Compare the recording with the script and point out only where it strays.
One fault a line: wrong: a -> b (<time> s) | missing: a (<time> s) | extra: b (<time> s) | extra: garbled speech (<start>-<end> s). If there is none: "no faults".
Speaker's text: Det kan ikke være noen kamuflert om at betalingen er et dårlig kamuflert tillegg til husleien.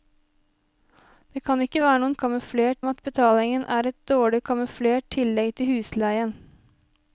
no faults